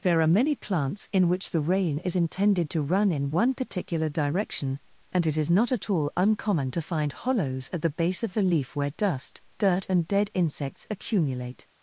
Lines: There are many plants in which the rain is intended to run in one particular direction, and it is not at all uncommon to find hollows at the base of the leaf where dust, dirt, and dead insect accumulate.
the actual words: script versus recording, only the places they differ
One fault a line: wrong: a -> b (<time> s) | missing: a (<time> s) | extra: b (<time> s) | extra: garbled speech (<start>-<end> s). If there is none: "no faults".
wrong: insect -> insects (10.3 s)